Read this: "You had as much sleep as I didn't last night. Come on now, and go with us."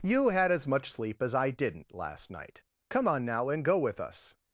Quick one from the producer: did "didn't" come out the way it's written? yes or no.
yes